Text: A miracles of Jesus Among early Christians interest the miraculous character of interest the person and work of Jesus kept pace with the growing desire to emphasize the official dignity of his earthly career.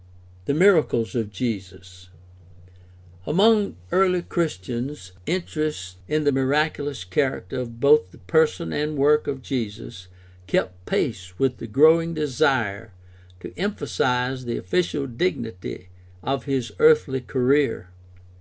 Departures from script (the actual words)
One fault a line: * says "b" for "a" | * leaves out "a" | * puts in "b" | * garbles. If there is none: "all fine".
* says "The" for "A"
* puts in "in"
* says "both" for "interest"